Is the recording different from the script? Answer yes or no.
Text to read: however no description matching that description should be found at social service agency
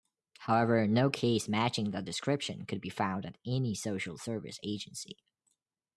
yes